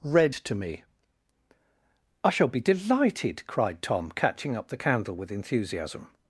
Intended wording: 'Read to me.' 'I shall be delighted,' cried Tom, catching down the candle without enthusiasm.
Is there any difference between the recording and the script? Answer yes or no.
yes